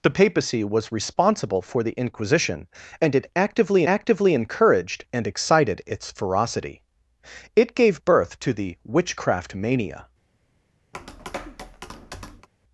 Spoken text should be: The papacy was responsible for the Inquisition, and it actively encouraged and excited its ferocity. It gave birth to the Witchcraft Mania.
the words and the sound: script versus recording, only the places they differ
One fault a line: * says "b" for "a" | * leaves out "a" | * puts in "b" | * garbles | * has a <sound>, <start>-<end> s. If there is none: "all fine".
* puts in "actively"
* has a tap, 10.9-12.5 s